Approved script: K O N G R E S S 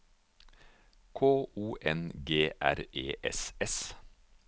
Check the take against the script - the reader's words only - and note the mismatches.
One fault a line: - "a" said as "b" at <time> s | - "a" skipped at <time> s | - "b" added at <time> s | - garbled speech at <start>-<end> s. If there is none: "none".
none